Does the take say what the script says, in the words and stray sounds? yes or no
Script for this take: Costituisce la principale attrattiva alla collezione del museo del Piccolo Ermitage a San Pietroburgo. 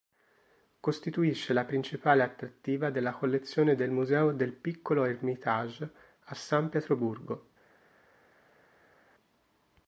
no